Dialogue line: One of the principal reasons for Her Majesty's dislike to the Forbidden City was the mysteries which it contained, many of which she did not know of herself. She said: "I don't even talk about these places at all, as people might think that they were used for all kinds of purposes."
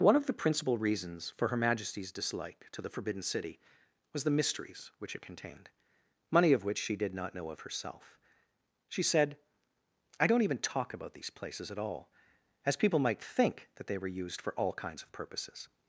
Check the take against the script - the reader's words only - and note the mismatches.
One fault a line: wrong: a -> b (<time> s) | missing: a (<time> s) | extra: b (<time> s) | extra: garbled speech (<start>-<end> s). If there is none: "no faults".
wrong: many -> money (6.3 s)